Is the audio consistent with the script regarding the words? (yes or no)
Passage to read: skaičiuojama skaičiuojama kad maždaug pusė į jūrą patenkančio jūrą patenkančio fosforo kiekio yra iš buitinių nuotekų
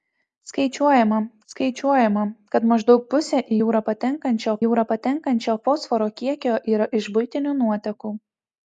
yes